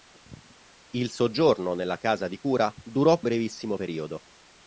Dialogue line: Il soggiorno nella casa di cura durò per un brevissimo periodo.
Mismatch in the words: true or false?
true